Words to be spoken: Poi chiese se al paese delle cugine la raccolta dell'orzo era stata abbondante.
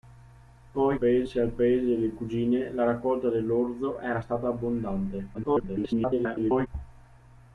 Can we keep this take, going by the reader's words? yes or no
no